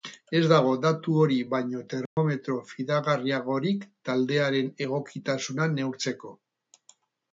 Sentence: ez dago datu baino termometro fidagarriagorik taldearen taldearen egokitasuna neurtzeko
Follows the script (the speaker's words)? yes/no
no